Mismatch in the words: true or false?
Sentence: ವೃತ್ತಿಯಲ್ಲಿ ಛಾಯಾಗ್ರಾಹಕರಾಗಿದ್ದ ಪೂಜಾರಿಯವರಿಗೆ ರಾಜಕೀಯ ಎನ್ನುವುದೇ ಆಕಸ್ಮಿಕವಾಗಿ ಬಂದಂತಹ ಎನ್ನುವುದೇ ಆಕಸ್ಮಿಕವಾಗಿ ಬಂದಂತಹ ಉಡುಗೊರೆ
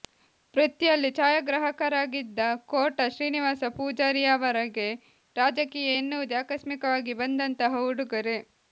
true